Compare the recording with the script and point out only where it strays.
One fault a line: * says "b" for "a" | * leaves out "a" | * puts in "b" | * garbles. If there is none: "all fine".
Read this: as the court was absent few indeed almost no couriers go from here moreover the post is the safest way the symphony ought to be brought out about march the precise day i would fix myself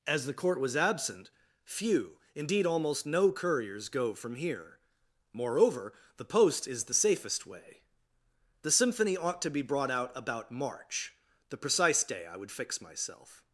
all fine